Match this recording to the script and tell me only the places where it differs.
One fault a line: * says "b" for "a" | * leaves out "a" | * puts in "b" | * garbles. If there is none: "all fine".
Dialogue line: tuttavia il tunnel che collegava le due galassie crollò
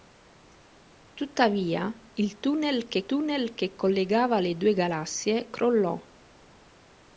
* puts in "tunnel che"